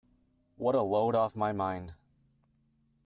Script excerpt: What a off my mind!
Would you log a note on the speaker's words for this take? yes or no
yes